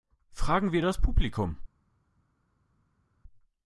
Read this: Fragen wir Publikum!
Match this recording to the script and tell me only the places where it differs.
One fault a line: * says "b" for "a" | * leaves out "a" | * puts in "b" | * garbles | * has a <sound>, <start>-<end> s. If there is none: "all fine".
* puts in "das"